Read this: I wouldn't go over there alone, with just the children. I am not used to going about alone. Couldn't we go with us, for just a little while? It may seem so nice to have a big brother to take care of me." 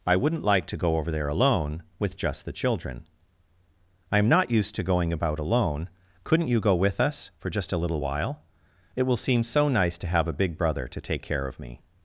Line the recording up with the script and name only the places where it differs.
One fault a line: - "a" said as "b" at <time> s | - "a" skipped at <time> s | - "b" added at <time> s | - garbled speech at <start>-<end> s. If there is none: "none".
- "like to" added at 0.4 s
- "we" said as "you" at 6.5 s
- "may" said as "will" at 9.0 s